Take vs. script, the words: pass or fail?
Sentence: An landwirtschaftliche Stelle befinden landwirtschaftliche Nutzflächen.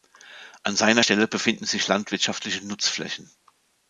fail